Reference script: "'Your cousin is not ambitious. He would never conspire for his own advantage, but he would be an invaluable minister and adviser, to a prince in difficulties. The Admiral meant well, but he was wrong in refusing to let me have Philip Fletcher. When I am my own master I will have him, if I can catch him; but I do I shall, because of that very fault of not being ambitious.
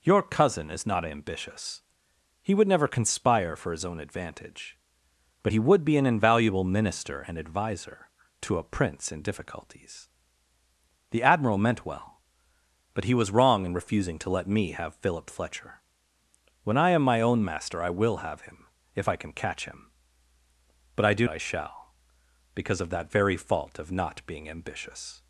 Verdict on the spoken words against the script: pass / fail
pass